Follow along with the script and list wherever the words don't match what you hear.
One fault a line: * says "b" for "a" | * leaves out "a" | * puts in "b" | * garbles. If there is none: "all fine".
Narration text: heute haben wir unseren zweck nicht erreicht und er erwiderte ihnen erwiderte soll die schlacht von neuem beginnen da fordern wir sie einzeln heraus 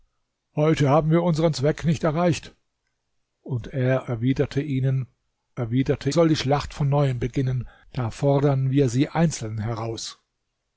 all fine